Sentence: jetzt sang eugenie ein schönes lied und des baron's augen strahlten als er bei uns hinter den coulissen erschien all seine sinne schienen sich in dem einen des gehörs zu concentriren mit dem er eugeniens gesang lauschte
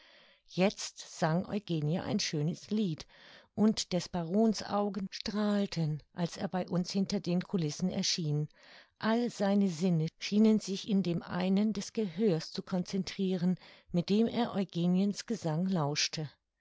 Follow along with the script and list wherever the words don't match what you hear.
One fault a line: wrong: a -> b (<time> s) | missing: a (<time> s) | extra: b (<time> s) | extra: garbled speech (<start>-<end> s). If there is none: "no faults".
no faults